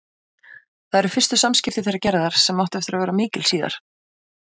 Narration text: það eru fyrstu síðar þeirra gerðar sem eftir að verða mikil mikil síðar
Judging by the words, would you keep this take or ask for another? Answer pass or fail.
fail